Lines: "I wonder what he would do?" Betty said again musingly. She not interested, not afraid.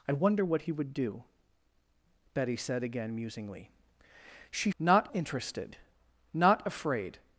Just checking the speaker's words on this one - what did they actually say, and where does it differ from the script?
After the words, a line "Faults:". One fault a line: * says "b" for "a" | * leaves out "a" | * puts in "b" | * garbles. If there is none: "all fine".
"I wonder what he would do?" Betty said again musingly. She not interested, not afraid.
Faults:
all fine